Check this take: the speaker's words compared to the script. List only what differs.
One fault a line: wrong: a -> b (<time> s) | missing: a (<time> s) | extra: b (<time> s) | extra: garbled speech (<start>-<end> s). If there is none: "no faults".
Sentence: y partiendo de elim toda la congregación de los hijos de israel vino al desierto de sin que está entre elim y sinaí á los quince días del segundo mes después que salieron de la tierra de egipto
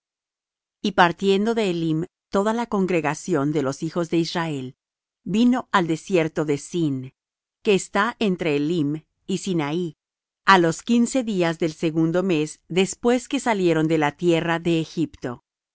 no faults